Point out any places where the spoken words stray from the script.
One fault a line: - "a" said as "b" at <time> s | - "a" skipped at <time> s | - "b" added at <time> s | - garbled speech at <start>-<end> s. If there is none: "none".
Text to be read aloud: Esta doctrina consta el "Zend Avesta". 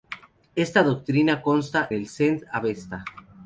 none